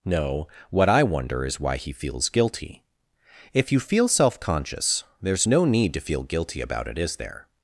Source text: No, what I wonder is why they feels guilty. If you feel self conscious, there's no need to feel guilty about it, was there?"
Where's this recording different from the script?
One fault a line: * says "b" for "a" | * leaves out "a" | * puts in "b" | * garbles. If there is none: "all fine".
* says "he" for "they"
* says "is" for "was"